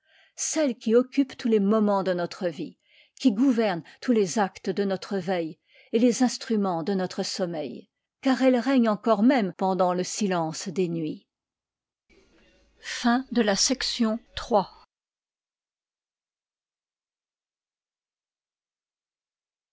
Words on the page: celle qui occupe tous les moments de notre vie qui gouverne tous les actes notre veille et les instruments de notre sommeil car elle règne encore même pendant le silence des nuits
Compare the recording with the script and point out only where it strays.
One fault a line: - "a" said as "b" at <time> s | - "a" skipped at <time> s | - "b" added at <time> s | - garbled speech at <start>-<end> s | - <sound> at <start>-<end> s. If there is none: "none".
- "de" added at 4.7 s